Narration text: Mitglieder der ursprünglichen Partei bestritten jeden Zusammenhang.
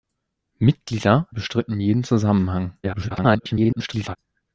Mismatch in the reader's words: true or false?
true